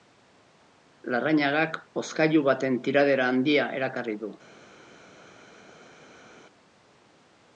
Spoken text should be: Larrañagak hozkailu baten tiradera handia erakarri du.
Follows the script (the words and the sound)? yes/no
yes